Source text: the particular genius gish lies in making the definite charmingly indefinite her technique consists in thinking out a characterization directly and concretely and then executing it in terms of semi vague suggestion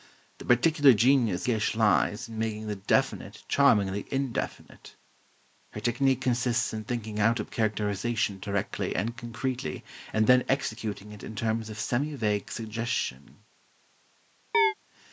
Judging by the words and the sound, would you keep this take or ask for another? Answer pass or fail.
fail